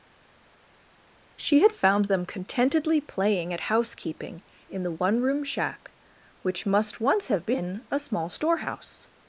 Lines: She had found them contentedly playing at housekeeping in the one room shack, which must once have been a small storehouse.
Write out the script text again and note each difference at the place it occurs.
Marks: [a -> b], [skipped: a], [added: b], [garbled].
She had found them contentedly playing at housekeeping in the one room shack, which must once have been a small storehouse.